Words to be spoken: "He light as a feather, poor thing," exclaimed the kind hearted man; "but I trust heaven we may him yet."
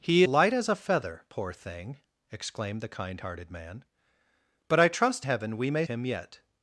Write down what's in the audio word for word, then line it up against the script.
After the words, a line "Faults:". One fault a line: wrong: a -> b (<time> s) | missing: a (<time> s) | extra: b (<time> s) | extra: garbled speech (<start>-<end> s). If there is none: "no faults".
"He light as a feather, poor thing," exclaimed the kind hearted man; "but I trust heaven we may him yet."
Faults:
no faults